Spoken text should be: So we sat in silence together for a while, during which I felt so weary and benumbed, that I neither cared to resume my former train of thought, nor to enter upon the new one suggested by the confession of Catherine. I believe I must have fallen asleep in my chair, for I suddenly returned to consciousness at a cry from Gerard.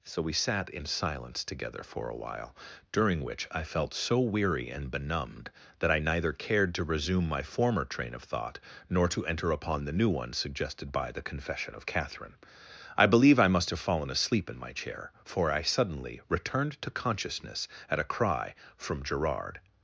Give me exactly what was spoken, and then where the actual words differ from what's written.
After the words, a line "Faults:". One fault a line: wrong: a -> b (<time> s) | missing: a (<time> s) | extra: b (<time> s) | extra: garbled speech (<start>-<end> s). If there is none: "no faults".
So we sat in silence together for a while, during which I felt so weary and benumbed, that I neither cared to resume my former train of thought, nor to enter upon the new one suggested by the confession of Catherine. I believe I must have fallen asleep in my chair, for I suddenly returned to consciousness at a cry from Gerard.
Faults:
no faults